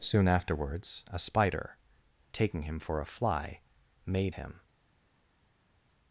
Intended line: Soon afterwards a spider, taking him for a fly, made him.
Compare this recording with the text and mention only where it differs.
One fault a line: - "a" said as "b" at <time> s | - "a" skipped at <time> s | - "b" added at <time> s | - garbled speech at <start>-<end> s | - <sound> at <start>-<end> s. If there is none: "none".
none